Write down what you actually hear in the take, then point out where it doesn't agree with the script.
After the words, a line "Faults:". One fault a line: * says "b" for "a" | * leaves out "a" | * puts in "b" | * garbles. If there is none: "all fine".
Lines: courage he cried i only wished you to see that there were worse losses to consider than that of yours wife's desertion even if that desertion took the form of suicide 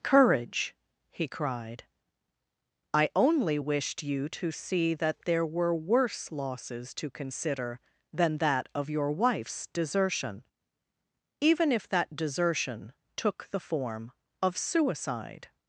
courage he cried i only wished you to see that there were worse losses to consider than that of your wife's desertion even if that desertion took the form of suicide
Faults:
* says "your" for "yours"